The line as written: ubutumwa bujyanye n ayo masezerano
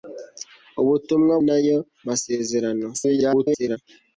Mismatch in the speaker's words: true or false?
true